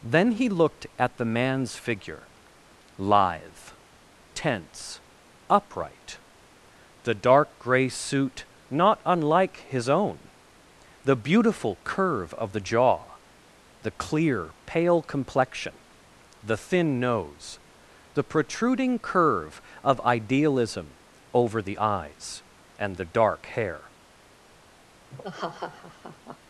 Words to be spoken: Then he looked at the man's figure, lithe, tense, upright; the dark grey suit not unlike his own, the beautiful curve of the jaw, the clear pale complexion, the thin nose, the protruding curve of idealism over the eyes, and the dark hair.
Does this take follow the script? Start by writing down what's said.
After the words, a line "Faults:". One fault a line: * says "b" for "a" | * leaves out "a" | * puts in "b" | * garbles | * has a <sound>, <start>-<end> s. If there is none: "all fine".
Then he looked at the man's figure, lithe, tense, upright; the dark grey suit not unlike his own, the beautiful curve of the jaw, the clear pale complexion, the thin nose, the protruding curve of idealism over the eyes, and the dark hair.
Faults:
* has a laugh, 25.1-26.4 s